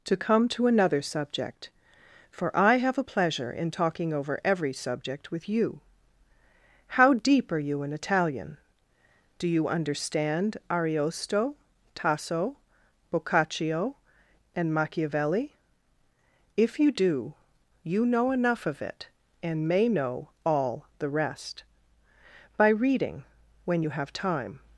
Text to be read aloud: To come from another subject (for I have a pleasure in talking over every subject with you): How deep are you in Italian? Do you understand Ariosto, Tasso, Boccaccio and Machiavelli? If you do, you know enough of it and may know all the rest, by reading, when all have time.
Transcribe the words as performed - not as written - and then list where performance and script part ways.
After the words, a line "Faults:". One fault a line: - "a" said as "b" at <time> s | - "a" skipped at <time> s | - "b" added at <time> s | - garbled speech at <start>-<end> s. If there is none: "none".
To come to another subject (for I have a pleasure in talking over every subject with you): How deep are you in Italian? Do you understand Ariosto, Tasso, Boccaccio and Machiavelli? If you do, you know enough of it and may know all the rest, by reading, when you have time.
Faults:
- "from" said as "to" at 0.5 s
- "all" said as "you" at 23.8 s